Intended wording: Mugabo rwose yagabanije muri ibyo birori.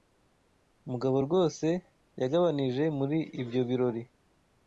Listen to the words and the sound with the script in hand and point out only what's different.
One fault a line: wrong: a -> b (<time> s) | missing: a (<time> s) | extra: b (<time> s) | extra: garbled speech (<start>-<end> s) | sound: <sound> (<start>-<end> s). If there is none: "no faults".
no faults